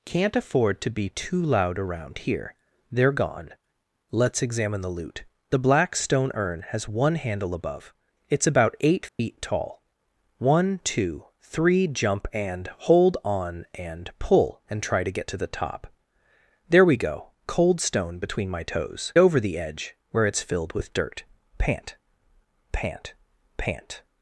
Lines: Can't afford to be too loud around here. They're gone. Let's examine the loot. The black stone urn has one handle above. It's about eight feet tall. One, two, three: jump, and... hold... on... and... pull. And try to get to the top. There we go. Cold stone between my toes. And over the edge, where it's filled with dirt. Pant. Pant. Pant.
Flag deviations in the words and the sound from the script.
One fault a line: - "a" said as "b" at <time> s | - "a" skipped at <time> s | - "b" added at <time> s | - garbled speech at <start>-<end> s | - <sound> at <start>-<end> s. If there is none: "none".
- dropout at 9.1-9.2 s
- "And" skipped at 19.1 s